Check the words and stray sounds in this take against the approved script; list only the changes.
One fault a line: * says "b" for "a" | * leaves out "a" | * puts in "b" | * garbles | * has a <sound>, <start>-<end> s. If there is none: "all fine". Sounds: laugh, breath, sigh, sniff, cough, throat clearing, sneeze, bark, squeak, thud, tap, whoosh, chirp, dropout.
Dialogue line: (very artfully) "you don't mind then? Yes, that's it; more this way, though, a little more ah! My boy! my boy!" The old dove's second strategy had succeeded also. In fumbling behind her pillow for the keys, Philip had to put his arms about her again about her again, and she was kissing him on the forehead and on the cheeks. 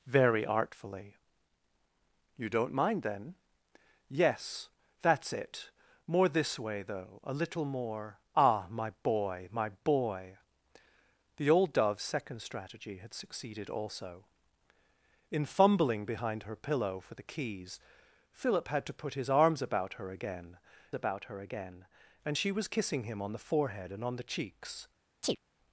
* has a chirp, 25.2-25.4 s